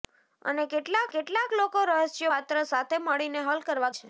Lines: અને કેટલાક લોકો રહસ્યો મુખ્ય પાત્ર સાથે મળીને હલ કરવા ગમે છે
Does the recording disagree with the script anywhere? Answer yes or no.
yes